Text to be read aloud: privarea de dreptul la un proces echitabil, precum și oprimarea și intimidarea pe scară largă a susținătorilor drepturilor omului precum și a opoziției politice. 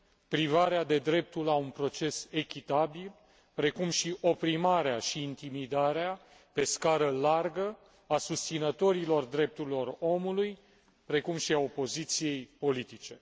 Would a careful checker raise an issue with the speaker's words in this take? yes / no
no